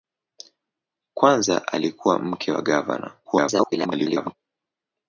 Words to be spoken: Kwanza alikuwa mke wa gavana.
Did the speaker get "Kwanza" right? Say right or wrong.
right